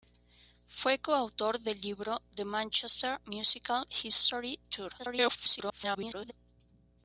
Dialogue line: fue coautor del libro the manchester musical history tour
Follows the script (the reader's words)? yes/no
no